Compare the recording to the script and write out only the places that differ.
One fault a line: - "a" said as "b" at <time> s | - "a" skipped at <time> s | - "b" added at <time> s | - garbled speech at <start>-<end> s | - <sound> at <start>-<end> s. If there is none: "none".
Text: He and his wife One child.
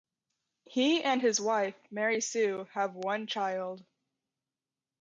- "Mary Sue have" added at 1.9 s